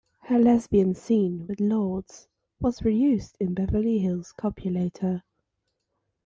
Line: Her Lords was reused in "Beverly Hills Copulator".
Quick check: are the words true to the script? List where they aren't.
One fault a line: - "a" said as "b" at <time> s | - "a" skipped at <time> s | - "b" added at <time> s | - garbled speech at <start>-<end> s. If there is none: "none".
- "lesbian scene with" added at 0.4 s